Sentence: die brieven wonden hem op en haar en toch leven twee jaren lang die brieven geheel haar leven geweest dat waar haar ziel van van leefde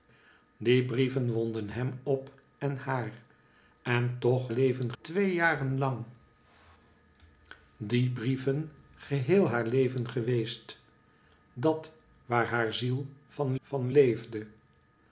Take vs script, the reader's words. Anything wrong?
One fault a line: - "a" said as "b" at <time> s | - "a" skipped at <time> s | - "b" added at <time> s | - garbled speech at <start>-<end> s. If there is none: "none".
none